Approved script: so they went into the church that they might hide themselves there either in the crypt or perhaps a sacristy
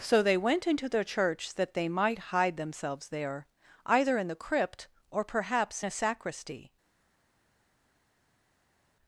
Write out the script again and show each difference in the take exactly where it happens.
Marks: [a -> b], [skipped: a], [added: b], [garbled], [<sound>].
so they went into the church that they might hide themselves there either in the crypt or perhaps a sacristy